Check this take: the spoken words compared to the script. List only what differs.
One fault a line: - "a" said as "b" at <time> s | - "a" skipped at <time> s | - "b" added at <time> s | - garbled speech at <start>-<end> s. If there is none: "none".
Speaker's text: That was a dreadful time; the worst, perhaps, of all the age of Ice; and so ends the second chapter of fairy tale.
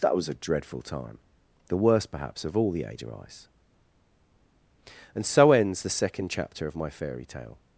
- "my" added at 6.8 s